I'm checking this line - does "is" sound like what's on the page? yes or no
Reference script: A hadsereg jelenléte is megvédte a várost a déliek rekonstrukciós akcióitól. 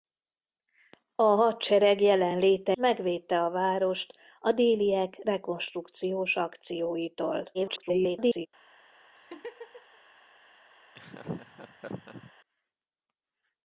no